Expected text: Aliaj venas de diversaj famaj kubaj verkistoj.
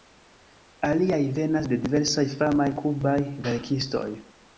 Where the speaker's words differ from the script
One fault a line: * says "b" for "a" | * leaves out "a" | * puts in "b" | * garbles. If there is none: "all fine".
all fine